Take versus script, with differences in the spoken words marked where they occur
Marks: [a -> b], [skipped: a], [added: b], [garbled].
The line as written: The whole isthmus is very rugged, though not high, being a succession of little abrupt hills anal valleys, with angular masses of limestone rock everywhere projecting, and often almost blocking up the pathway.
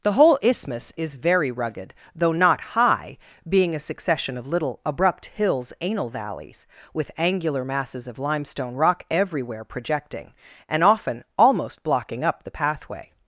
The whole isthmus is very rugged, though not high, being a succession of little abrupt hills anal valleys, with angular masses of limestone rock everywhere projecting, and often almost blocking up the pathway.